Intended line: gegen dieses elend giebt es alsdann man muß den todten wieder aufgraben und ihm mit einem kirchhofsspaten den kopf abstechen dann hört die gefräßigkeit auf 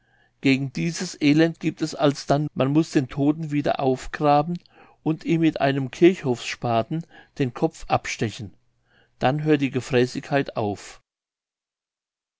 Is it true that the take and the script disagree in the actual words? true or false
false